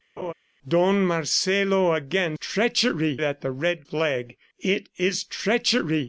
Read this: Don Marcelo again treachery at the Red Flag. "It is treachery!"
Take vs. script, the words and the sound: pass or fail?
fail